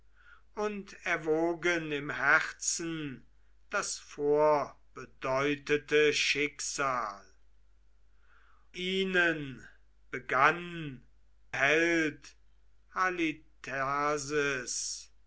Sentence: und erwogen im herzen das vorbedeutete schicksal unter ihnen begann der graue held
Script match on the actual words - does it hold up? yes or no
no